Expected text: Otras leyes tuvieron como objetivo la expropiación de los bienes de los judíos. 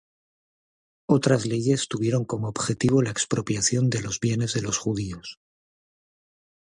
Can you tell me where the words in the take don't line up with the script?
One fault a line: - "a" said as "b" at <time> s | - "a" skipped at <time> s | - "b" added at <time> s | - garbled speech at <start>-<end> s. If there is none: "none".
none